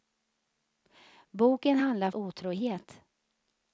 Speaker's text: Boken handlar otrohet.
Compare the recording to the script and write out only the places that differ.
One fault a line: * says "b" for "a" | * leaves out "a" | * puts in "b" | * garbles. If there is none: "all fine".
all fine